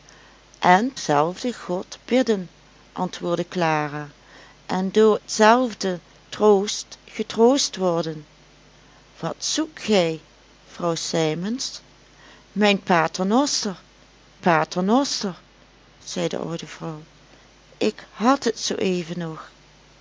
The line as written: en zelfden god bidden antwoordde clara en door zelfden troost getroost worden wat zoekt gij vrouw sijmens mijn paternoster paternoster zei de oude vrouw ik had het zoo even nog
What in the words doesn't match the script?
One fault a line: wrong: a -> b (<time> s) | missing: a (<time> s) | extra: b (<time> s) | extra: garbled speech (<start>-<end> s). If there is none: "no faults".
no faults